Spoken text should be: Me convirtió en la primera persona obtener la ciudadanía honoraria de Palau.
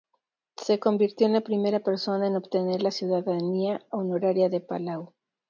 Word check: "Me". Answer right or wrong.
wrong